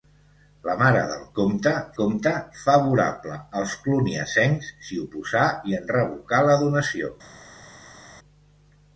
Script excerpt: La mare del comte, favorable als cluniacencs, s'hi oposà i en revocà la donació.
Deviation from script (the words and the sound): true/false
true